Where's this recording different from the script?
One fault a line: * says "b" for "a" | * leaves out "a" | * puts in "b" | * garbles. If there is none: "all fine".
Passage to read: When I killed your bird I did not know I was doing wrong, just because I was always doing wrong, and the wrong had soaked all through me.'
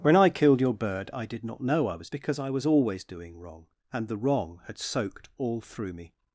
* leaves out "doing wrong just"